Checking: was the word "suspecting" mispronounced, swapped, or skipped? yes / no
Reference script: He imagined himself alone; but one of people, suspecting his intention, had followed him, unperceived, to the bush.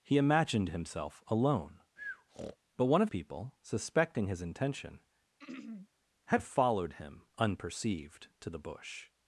no